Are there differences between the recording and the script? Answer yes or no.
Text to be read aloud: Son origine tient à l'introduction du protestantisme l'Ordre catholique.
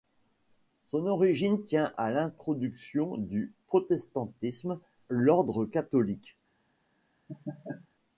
no